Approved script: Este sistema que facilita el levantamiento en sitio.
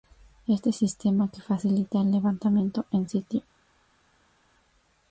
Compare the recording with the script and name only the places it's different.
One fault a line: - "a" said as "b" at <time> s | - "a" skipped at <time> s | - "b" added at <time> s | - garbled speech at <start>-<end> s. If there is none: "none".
none